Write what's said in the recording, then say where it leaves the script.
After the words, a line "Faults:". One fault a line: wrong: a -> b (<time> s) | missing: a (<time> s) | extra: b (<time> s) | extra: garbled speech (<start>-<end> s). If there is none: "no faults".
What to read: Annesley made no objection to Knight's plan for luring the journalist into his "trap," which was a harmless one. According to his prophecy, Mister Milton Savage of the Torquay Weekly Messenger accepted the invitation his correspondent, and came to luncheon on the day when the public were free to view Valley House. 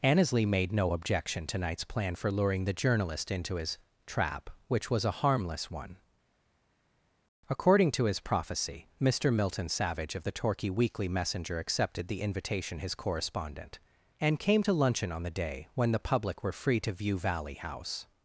Annesley made no objection to Knight's plan for luring the journalist into his "trap," which was a harmless one. According to his prophecy, Mister Milton Savage of the Torquay Weekly Messenger accepted the invitation his correspondent, and came to luncheon on the day when the public were free to view Valley House.
Faults:
no faults